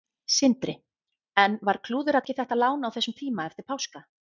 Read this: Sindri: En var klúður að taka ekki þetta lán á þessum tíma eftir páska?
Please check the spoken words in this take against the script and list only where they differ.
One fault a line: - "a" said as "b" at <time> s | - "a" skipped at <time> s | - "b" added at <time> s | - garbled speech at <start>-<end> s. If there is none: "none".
- "taka" skipped at 2.2 s